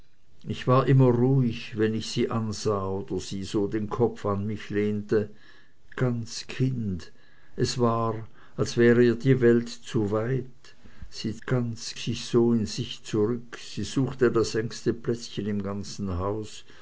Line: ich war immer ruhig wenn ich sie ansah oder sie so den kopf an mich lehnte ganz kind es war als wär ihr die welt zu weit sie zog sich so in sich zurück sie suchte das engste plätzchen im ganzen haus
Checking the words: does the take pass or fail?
fail